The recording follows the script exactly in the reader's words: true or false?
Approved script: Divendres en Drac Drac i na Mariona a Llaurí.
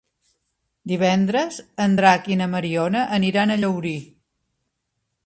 false